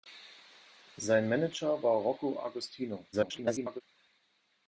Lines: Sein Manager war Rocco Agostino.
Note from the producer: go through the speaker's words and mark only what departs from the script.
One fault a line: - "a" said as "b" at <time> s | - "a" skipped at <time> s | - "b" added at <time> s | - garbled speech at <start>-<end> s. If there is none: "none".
- garbled speech at 3.1-3.8 s